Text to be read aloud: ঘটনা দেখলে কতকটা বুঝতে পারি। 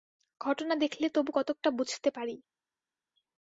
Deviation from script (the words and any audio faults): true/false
true